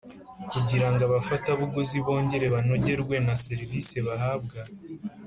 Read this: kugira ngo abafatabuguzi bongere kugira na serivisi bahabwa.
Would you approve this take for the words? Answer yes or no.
no